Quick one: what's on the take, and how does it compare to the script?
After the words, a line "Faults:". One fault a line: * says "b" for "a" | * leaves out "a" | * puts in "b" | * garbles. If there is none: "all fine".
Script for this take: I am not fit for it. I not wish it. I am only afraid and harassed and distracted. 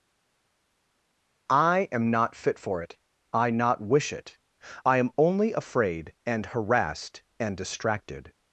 I am not fit for it. I not wish it. I am only afraid and harassed and distracted.
Faults:
all fine